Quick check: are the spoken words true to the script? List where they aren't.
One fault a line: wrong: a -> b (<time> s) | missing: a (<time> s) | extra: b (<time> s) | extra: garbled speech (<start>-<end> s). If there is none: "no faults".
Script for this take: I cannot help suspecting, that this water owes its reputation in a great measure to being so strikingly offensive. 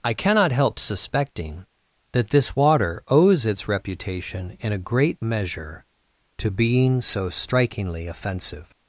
no faults